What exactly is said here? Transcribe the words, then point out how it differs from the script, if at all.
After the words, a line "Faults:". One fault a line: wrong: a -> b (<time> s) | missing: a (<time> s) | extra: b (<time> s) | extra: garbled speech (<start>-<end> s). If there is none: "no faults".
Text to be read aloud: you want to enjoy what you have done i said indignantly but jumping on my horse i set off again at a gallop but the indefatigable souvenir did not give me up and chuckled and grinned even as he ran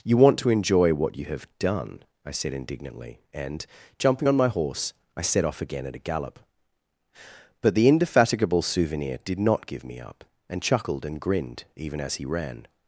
you want to enjoy what you have done i said indignantly and jumping on my horse i set off again at a gallop but the indefatigable souvenir did not give me up and chuckled and grinned even as he ran
Faults:
wrong: but -> and (3.3 s)